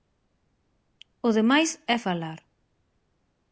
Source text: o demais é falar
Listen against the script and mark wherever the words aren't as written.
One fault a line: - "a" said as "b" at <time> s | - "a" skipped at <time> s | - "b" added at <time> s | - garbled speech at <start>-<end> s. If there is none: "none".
none